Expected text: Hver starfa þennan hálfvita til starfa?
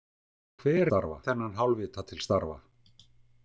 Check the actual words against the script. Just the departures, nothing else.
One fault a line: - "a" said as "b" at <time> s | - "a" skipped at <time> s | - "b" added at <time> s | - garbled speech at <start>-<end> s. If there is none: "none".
none